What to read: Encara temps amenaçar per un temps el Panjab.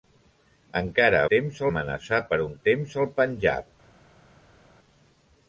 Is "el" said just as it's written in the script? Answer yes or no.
yes